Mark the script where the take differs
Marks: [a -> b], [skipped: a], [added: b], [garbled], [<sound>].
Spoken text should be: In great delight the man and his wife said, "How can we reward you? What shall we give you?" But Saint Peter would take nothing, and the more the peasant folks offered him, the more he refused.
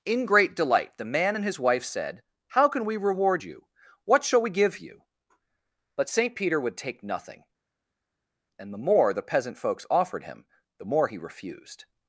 In great delight the man and his wife said, "How can we reward you? What shall we give you?" But Saint Peter would take nothing, and the more the peasant folks offered him, the more he refused.